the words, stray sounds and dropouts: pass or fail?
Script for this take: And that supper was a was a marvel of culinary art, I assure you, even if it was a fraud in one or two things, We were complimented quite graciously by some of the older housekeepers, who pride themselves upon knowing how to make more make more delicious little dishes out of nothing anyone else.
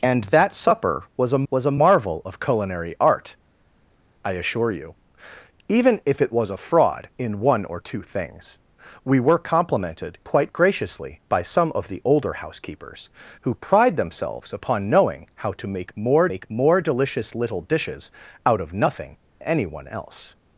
pass